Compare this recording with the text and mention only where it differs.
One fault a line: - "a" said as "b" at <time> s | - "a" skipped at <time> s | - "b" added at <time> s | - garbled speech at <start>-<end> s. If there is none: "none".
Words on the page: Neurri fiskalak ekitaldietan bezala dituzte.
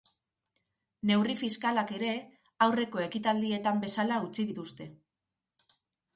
- "ere aurreko" added at 2.0 s
- "utzi" added at 4.3 s